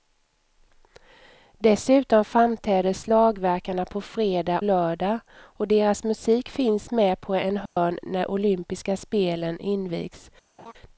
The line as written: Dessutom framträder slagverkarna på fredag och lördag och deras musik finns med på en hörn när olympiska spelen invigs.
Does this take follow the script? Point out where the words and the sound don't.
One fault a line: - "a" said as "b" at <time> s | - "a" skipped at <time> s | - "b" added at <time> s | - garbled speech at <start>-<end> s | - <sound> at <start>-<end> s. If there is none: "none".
- "och" skipped at 4.6 s
- dropout at 7.7-7.8 s
- laugh at 10.6-10.7 s